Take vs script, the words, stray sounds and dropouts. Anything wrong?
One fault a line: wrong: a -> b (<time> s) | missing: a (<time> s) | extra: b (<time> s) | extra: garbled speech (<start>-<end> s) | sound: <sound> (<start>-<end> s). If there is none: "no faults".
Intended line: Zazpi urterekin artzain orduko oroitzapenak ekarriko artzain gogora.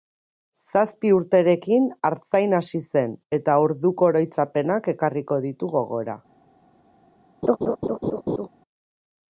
extra: hasi zen eta (2.6 s)
wrong: artzain -> ditu (5.5 s)
sound: laugh (7.4-8.5 s)